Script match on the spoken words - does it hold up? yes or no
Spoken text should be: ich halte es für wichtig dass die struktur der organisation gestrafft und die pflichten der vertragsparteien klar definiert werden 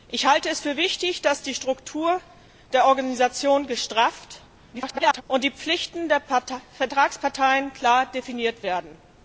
no